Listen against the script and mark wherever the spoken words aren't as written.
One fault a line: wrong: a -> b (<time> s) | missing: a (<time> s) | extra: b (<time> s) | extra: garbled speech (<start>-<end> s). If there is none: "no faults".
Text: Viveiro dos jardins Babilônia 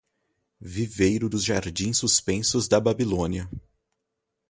extra: suspensos da (1.9 s)